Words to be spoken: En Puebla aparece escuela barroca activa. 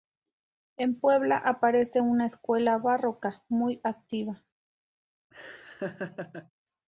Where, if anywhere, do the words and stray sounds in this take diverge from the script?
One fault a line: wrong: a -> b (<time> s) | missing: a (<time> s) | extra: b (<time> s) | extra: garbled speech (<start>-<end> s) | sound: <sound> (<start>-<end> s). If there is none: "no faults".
extra: una (2.0 s)
extra: muy (3.5 s)
sound: laugh (5.3-6.5 s)